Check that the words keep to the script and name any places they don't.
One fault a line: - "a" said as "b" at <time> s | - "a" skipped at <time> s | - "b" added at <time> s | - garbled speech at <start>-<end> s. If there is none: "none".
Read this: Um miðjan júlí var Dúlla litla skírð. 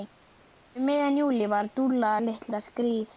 none